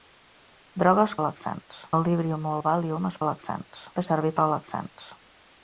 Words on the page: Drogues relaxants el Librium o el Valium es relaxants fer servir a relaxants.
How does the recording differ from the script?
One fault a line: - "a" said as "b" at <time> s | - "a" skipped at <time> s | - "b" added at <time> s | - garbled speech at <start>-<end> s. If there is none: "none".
none